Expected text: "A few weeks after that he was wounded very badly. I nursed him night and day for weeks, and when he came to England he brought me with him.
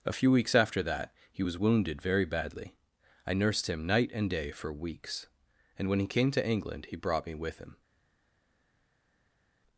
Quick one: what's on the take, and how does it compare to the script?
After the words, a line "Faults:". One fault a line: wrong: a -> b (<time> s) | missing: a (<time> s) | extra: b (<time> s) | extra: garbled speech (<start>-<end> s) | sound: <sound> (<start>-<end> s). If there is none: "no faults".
"A few weeks after that he was wounded very badly. I nursed him night and day for weeks, and when he came to England he brought me with him.
Faults:
no faults